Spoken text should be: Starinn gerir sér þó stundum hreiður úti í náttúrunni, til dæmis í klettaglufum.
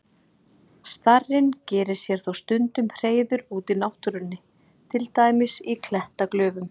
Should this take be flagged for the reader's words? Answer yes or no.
no